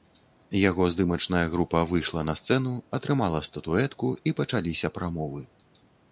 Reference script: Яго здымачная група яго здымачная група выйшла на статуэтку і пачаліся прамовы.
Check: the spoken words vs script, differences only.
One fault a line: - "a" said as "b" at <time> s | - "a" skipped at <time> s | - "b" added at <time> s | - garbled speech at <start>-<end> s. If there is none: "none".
- "яго здымачная група выйшла на" said as "выйшла на сцэну атрымала" at 1.9 s